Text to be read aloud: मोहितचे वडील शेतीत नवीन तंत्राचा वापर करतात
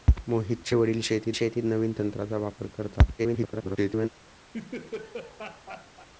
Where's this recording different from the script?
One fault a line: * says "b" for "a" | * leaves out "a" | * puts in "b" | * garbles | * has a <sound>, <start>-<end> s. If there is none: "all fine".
* puts in "शेतीत"
* garbles
* has a laugh, 4.5-6.1 s